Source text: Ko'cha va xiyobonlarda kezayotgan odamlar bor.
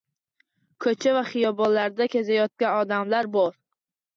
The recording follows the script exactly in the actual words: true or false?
true